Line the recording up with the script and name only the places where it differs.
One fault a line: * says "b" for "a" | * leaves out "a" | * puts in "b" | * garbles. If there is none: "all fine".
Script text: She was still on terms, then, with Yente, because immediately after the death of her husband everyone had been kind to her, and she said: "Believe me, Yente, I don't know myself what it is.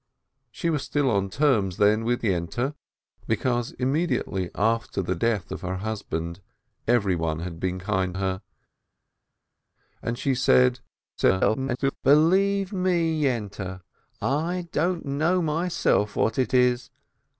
* leaves out "to"
* garbles